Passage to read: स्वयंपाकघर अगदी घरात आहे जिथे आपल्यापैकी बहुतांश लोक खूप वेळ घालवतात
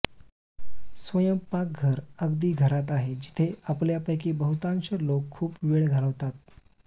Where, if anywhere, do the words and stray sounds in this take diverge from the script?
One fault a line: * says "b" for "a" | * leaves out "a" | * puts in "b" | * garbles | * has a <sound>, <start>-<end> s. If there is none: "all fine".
all fine